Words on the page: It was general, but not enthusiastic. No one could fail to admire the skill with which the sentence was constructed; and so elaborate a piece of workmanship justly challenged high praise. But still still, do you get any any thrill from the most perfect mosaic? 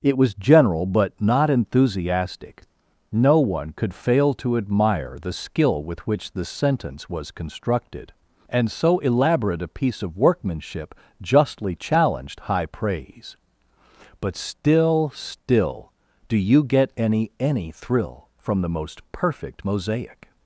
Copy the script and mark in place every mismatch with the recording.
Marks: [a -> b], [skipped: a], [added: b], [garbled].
It was general, but not enthusiastic. No one could fail to admire the skill with which the sentence was constructed; and so elaborate a piece of workmanship justly challenged high praise. But still still, do you get any any thrill from the most perfect mosaic?